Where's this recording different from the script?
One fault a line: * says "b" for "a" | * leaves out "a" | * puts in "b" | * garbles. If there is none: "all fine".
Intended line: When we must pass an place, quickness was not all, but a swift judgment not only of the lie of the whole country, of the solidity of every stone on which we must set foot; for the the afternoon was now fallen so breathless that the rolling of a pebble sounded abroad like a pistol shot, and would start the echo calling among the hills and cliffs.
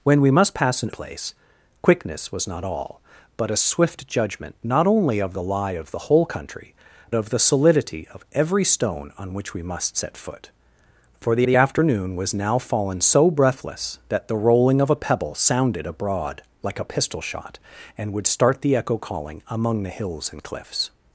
all fine